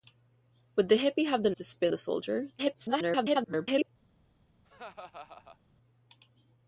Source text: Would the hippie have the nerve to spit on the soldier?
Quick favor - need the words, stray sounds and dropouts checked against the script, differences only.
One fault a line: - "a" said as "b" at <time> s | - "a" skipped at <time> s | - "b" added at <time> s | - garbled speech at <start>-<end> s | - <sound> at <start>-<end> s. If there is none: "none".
- "nerve" skipped at 1.5 s
- "on" skipped at 1.9 s
- garbled speech at 2.6-3.9 s
- laugh at 4.6-5.6 s